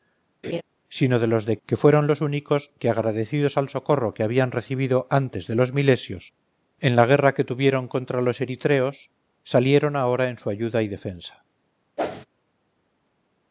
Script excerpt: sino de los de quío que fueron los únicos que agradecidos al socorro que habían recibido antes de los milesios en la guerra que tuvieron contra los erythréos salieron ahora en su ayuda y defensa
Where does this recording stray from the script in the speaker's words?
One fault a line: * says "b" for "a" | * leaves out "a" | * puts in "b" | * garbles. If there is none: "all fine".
* leaves out "quío"